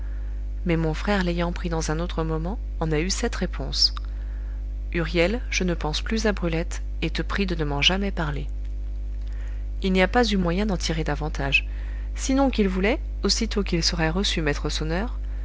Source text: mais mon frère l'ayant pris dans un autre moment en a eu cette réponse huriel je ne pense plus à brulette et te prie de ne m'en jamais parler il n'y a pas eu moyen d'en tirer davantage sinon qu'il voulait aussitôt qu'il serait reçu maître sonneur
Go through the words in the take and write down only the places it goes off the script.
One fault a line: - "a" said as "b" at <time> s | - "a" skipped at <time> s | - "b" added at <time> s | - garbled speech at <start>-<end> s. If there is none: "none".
none